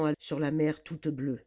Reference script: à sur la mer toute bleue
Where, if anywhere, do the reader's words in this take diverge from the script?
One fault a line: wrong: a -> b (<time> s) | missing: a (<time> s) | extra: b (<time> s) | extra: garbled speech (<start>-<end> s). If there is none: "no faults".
no faults